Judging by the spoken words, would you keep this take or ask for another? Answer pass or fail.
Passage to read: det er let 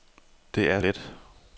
pass